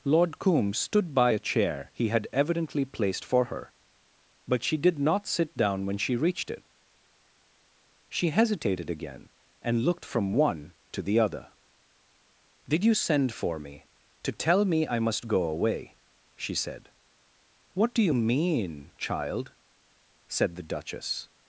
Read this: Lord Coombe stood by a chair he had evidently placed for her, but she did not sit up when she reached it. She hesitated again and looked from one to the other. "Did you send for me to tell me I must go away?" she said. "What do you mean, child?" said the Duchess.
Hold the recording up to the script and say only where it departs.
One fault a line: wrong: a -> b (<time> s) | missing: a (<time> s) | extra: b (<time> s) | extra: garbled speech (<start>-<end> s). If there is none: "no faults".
wrong: up -> down (5.6 s)